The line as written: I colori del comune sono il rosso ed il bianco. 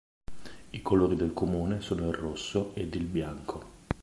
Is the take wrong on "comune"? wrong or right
right